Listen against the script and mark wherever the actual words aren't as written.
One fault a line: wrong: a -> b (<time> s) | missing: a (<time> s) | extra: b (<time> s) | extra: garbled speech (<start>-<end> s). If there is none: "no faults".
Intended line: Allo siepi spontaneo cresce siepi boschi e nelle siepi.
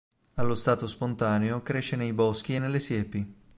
wrong: siepi -> stato (0.6 s)
wrong: siepi -> nei (1.9 s)